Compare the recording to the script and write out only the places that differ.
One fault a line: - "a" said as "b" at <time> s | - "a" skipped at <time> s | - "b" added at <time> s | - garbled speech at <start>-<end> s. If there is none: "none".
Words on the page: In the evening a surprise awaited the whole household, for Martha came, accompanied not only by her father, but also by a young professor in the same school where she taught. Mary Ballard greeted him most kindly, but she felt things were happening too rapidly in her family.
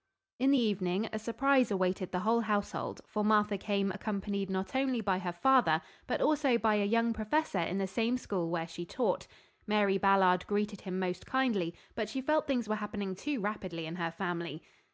none